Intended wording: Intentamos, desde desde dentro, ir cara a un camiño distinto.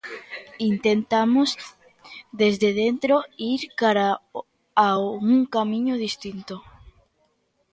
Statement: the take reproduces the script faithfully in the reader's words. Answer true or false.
false